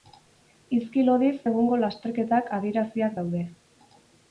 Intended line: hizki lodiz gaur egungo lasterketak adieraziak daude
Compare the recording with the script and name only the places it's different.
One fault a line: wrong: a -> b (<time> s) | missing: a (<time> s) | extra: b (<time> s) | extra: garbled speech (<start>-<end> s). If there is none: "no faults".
missing: gaur (1.3 s)